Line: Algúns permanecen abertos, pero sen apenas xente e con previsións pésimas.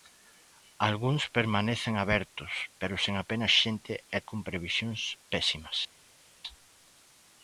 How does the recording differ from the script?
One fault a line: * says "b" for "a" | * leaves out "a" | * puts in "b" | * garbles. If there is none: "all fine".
all fine